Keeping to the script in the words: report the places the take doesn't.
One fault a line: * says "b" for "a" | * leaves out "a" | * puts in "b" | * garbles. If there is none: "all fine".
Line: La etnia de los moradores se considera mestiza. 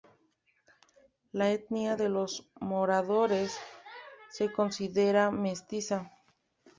all fine